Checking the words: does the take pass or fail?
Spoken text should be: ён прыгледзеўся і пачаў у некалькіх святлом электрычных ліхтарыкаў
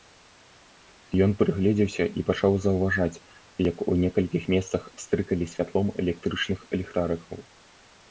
fail